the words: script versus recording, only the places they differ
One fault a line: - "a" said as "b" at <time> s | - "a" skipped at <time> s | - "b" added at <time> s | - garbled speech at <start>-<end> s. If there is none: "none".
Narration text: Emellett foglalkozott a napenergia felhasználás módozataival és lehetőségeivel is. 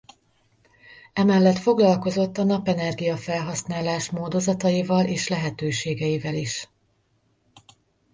none